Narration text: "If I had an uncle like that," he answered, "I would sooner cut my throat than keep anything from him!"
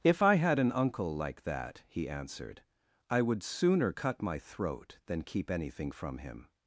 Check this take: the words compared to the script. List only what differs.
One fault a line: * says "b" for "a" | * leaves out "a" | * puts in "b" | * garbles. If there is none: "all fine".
all fine